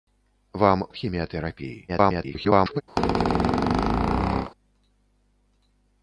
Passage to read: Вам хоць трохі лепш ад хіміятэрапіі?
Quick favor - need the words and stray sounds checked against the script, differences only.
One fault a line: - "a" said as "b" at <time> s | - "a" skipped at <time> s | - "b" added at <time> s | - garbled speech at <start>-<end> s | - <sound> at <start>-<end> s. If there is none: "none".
- "хоць трохі лепш" skipped at 0.8 s
- garbled speech at 1.9-2.8 s
- squeak at 3.0-4.5 s